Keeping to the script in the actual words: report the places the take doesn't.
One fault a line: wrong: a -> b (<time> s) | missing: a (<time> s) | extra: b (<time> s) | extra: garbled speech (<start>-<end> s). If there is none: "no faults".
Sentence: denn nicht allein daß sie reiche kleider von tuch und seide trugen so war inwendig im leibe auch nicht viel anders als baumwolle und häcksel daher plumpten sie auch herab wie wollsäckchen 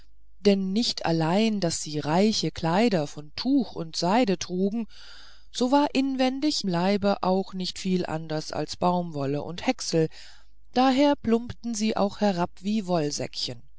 missing: im (6.6 s)